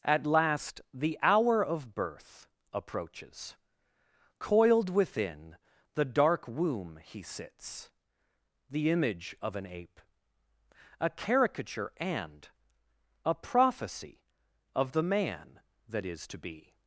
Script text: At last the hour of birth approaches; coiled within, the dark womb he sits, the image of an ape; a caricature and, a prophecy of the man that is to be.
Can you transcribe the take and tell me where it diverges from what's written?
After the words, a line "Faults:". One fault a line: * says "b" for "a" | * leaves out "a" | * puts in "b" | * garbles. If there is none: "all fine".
At last the hour of birth approaches; coiled within, the dark womb he sits, the image of an ape; a caricature and, a prophecy of the man that is to be.
Faults:
all fine